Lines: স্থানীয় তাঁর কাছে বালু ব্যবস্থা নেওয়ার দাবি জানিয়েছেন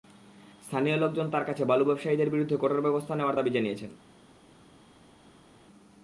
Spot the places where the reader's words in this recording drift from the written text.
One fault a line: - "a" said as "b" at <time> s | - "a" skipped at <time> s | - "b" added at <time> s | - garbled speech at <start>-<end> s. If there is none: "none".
- "লোকজন" added at 1.0 s
- "ব্যবসায়ীদের বিরুদ্ধে কঠোর" added at 1.9 s